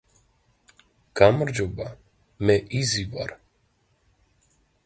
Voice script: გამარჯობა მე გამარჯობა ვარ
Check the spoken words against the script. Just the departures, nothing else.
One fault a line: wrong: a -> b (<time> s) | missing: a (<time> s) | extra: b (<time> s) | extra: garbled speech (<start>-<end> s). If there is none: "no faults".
wrong: გამარჯობა -> იზი (2.8 s)